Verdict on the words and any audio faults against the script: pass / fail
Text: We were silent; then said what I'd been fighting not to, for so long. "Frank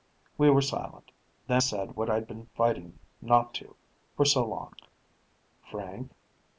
pass